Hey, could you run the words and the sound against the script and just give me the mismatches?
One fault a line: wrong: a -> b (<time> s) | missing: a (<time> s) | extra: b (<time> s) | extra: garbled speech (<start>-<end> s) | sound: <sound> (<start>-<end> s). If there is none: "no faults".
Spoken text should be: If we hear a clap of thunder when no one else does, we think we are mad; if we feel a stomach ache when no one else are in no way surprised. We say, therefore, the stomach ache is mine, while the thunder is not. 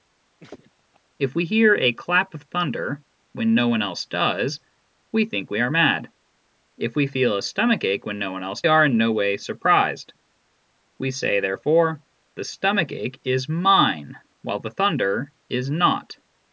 sound: laugh (0.4-1.0 s)